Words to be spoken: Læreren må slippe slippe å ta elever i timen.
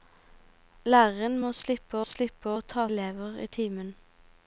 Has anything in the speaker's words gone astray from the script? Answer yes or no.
no